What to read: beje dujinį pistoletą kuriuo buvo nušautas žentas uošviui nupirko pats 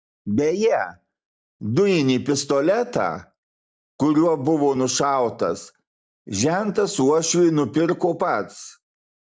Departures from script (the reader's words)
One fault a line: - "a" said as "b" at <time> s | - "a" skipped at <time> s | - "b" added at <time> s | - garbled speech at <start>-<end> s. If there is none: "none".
none